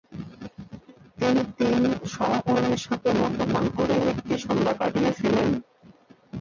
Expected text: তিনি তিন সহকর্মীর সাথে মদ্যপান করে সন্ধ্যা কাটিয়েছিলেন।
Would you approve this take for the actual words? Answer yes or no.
no